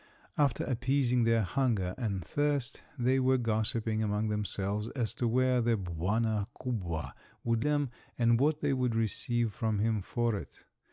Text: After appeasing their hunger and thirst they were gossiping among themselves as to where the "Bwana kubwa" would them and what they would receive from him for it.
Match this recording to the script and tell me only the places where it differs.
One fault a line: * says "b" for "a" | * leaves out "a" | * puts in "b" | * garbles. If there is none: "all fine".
all fine